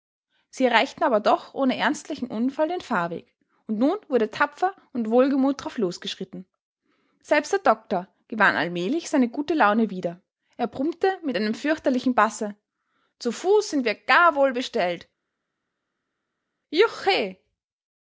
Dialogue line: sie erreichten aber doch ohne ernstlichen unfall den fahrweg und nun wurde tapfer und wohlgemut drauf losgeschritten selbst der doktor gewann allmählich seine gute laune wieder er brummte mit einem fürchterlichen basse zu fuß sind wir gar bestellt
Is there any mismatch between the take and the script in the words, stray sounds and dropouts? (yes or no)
yes